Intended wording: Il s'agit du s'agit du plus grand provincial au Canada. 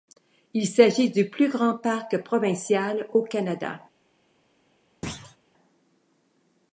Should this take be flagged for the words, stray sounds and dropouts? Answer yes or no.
yes